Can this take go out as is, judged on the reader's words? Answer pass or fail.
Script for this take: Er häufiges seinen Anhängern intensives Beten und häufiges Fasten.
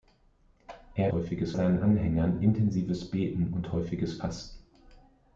pass